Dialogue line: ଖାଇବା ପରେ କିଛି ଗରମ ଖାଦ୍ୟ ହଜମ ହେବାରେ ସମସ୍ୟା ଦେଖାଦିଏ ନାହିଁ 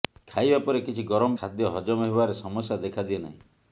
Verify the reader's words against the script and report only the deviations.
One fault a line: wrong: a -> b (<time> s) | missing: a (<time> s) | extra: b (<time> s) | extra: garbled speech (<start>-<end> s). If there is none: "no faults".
no faults